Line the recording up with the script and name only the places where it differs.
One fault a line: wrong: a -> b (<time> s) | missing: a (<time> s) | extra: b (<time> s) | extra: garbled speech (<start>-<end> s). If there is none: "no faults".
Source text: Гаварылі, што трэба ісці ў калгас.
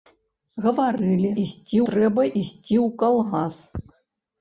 wrong: што -> ісці (1.4 s)